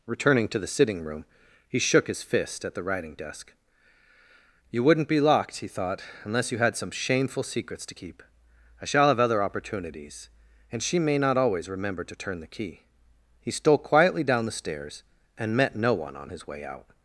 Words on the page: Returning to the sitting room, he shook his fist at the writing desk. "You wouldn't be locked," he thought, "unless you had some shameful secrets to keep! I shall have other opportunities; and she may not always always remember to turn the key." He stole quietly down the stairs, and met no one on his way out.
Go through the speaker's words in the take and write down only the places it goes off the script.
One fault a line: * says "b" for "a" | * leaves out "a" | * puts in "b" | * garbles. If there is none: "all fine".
* leaves out "always"